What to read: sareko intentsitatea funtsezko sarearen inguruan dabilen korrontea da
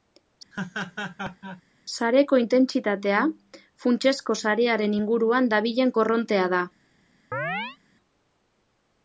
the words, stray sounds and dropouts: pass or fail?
fail